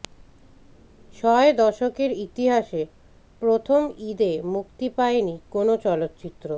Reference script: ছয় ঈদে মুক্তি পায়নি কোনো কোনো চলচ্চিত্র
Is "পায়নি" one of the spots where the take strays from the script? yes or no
no